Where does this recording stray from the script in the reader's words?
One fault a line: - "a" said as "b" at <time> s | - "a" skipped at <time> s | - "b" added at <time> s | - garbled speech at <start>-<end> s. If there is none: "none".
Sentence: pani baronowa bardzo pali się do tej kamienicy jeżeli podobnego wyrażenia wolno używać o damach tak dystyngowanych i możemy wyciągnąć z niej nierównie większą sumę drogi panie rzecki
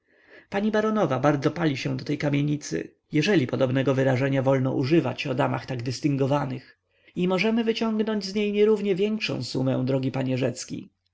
none